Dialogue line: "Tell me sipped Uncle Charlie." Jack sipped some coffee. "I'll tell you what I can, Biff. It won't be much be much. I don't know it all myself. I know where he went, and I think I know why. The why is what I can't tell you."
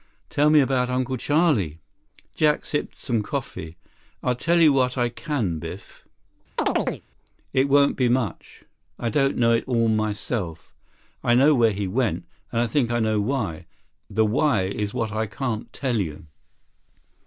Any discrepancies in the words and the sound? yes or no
yes